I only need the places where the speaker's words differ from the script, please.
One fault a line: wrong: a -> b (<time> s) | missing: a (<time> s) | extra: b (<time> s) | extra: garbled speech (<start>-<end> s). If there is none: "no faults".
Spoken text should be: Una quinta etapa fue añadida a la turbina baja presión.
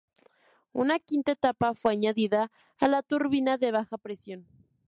extra: de (3.6 s)